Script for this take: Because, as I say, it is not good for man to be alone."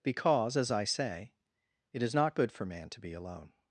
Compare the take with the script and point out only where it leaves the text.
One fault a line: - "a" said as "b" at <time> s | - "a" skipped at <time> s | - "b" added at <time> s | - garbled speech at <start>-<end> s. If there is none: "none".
none